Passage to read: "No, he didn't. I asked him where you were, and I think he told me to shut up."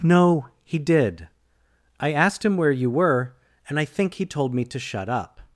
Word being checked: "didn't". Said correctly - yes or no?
no